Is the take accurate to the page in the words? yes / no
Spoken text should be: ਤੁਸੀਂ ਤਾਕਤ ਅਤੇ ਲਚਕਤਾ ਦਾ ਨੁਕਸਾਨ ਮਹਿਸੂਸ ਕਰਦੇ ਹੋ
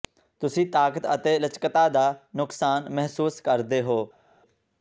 yes